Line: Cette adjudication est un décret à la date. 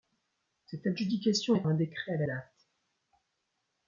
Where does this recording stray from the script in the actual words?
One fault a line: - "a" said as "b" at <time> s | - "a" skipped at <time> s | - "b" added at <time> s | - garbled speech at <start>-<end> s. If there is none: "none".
none